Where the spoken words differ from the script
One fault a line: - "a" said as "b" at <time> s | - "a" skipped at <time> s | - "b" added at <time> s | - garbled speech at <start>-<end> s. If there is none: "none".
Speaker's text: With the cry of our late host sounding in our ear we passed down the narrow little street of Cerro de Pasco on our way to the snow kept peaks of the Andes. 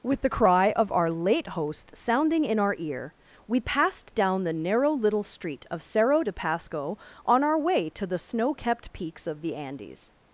none